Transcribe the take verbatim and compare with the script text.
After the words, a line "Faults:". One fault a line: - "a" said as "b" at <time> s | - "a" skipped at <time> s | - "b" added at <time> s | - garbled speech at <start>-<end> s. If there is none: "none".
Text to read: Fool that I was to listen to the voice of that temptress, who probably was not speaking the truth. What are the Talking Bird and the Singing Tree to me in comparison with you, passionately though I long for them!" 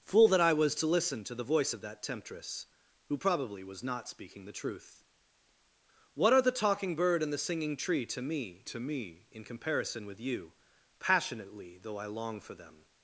Fool that I was to listen to the voice of that temptress, who probably was not speaking the truth. What are the Talking Bird and the Singing Tree to me to me in comparison with you, passionately though I long for them!"
Faults:
- "to me" added at 8.6 s